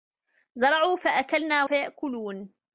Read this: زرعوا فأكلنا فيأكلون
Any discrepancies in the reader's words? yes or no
no